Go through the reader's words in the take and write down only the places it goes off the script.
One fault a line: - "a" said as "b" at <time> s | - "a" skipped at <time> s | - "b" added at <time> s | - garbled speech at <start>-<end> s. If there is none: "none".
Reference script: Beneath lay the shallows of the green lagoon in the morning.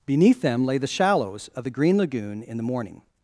- "them" added at 0.4 s